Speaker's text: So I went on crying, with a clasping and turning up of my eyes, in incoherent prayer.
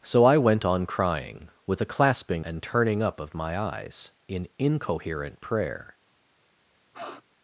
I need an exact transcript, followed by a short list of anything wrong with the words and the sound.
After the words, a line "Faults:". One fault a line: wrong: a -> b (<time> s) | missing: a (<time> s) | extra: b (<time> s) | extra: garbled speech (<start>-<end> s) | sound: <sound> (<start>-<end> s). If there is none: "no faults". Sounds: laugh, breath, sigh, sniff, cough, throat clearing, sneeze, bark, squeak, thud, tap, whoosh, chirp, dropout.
So I went on crying, with a clasping and turning up of my eyes, in incoherent prayer.
Faults:
sound: sniff (6.9-7.2 s)